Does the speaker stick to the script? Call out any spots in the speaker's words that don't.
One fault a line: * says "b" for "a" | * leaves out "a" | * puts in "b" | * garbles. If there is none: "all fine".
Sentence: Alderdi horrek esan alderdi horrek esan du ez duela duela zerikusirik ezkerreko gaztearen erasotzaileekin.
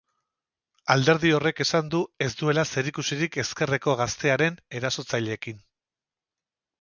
* leaves out "alderdi horrek esan"
* leaves out "duela"